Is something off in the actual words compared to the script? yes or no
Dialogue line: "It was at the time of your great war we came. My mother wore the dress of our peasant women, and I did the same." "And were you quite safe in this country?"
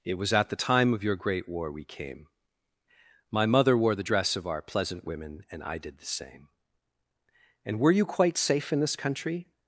yes